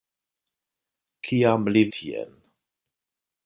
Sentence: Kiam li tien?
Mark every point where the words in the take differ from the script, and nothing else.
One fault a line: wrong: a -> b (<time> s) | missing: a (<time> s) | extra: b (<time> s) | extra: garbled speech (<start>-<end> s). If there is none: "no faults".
no faults